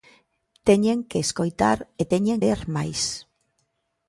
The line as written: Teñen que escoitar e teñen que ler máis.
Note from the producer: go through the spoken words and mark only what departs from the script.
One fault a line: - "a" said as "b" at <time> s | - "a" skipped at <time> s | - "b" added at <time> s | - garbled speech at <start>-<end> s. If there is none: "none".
- "que" skipped at 2.4 s